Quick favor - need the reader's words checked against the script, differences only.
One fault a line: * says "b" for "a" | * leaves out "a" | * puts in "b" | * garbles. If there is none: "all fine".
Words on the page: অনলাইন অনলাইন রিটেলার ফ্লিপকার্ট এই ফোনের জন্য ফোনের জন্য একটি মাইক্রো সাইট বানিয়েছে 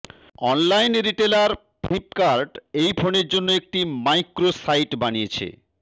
* leaves out "অনলাইন"
* leaves out "ফোনের জন্য"